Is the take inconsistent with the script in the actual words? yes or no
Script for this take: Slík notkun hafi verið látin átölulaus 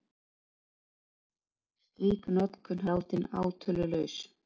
yes